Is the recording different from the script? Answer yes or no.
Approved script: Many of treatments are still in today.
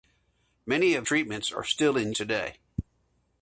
no